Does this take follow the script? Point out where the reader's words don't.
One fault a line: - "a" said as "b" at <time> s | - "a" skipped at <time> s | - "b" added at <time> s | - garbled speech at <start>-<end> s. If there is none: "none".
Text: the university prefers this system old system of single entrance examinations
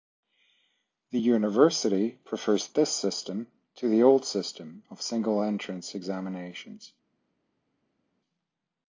- "to the" added at 3.8 s